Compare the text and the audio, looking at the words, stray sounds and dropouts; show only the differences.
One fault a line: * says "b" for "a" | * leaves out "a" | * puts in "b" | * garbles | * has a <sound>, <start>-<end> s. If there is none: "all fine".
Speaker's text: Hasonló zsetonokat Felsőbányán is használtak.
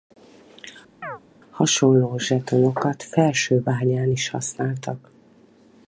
* has a chirp, 1.0-1.2 s